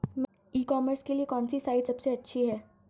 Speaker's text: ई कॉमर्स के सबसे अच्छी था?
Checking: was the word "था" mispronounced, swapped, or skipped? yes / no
yes